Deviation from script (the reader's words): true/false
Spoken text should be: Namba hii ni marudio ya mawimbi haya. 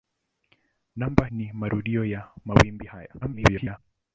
true